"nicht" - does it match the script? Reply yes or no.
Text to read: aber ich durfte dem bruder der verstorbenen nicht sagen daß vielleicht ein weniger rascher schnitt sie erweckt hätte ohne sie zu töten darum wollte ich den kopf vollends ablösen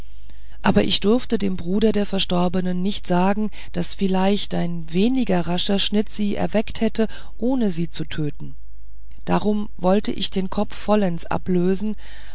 yes